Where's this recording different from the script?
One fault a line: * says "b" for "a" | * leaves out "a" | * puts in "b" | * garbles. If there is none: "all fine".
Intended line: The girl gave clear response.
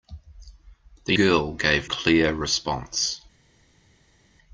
all fine